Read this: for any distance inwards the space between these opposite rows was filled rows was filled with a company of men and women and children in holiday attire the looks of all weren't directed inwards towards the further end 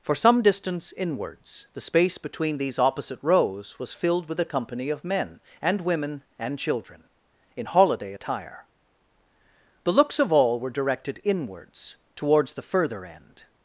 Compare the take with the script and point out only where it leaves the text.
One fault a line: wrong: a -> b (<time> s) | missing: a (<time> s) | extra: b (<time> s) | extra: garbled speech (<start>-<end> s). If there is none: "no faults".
wrong: any -> some (0.1 s)
missing: rows was filled (4.3 s)
wrong: weren't -> were (10.6 s)